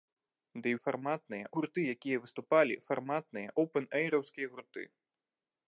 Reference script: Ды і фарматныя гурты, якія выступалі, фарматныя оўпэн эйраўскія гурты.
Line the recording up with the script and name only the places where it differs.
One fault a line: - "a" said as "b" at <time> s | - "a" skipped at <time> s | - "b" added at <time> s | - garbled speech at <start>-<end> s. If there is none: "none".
none